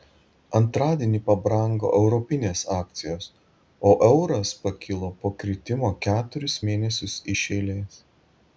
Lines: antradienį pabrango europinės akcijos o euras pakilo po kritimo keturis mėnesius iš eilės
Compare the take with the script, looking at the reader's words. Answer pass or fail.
pass